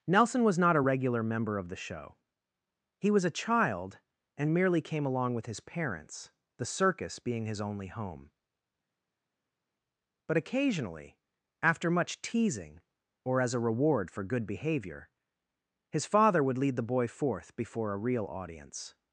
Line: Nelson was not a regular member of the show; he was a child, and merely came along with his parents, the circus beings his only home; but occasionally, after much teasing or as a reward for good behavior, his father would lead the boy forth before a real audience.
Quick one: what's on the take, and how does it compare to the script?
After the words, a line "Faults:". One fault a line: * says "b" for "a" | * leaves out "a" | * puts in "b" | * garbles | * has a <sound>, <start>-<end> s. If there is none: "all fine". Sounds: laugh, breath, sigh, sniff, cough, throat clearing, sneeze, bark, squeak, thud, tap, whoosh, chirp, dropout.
Nelson was not a regular member of the show; he was a child, and merely came along with his parents, the circus being his only home; but occasionally, after much teasing or as a reward for good behavior, his father would lead the boy forth before a real audience.
Faults:
* says "being" for "beings"